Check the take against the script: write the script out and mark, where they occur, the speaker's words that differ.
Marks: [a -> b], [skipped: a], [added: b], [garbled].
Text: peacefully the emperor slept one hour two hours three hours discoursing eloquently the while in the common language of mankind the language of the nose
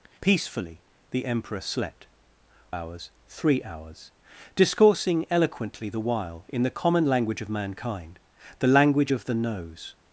peacefully the emperor slept [skipped: one hour two] hours three hours discoursing eloquently the while in the common language of mankind the language of the nose